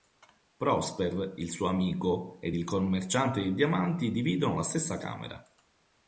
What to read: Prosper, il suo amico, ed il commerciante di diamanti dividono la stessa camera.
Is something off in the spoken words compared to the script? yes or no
no